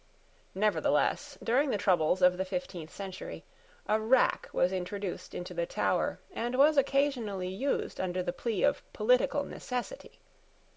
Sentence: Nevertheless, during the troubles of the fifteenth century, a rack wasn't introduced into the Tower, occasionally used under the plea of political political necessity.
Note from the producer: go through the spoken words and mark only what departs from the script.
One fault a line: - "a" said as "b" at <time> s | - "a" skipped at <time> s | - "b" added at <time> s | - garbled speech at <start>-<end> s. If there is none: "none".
- "wasn't" said as "was" at 4.5 s
- "and was" added at 6.3 s
- "political" skipped at 9.4 s